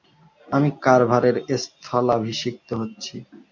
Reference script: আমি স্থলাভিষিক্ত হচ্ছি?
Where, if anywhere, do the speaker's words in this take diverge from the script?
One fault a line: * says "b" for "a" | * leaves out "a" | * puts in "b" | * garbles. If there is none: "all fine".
* puts in "কার্ভারের"